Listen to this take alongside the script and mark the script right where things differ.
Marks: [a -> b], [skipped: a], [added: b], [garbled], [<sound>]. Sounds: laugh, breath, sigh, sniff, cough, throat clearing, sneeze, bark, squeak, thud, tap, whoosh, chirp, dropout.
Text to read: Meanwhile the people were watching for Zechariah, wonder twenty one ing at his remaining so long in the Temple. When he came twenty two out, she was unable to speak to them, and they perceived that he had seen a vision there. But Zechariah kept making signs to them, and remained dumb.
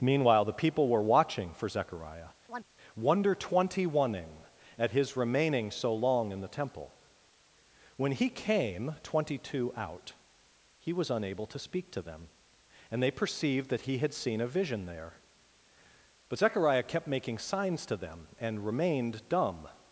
Meanwhile the people were watching for Zechariah, [chirp] wonder twenty one ing at his remaining so long in the Temple. When he came twenty two out, [she -> he] was unable to speak to them, and they perceived that he had seen a vision there. But Zechariah kept making signs to them, and remained dumb.